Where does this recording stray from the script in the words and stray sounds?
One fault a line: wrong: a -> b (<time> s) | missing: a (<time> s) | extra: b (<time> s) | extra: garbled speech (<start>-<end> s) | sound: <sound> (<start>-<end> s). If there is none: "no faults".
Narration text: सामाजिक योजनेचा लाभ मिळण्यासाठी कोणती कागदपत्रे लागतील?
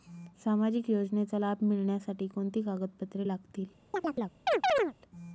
sound: chirp (3.9-4.9 s)